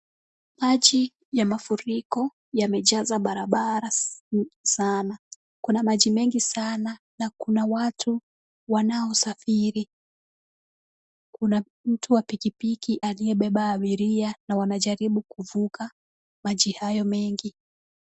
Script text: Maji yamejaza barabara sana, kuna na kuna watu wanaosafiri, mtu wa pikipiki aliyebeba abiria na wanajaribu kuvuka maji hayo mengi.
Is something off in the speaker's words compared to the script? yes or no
yes